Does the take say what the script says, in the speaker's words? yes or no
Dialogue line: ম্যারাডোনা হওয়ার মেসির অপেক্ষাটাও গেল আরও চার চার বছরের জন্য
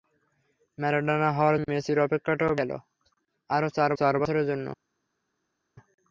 yes